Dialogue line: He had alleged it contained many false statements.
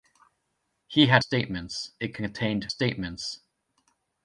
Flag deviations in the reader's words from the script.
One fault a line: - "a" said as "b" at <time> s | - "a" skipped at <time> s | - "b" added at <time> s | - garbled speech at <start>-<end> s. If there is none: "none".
- "alleged" said as "statements" at 1.2 s
- "many false" skipped at 2.7 s